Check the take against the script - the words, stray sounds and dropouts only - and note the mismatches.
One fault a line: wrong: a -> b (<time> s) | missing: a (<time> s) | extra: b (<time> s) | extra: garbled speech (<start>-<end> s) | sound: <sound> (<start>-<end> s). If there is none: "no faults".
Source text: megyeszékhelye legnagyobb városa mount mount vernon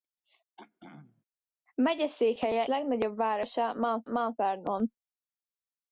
sound: throat clearing (0.6-1.2 s)